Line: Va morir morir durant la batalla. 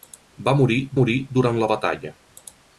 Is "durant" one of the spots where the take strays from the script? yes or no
no